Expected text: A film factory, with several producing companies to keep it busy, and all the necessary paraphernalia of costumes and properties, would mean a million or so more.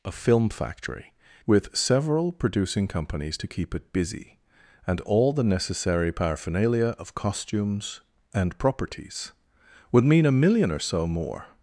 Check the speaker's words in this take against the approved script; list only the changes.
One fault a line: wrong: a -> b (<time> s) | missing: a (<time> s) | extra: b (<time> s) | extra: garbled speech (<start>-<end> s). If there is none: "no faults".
no faults